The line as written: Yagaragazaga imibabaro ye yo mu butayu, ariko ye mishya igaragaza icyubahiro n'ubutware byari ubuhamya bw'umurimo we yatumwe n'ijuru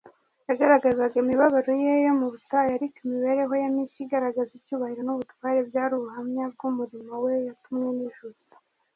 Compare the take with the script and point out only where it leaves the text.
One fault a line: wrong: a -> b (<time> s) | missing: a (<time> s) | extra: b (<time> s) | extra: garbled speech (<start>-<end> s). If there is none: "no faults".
extra: imibereho (3.0 s)